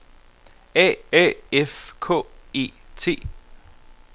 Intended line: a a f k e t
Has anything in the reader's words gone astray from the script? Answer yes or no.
no